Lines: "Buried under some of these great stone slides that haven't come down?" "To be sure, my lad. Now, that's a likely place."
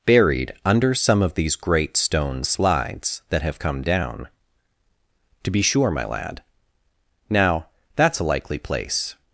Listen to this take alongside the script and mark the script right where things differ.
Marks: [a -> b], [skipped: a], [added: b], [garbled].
"Buried under some of these great stone slides that [haven't -> have] come down?" "To be sure, my lad. Now, that's a likely place."